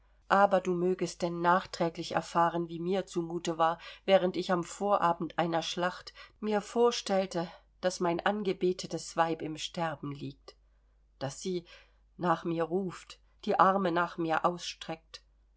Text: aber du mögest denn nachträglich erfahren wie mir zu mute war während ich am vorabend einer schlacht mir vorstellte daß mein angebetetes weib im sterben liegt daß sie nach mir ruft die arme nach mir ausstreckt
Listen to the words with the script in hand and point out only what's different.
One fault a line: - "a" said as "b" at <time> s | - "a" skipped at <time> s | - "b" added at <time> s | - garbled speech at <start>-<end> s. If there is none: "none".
none